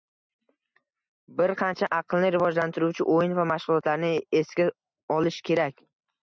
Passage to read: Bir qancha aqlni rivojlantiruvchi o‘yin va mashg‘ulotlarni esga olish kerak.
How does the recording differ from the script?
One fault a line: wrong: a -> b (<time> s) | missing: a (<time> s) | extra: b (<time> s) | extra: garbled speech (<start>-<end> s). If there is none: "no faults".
no faults